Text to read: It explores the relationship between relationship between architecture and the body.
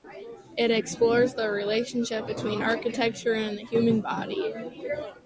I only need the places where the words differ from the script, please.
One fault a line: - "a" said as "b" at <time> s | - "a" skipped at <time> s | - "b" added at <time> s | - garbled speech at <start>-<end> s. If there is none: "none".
- "relationship between" skipped at 2.6 s
- "human" added at 3.6 s